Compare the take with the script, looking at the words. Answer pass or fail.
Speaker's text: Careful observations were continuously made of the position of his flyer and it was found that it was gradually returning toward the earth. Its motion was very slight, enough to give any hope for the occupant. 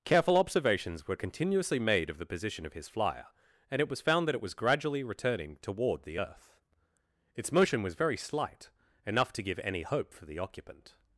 pass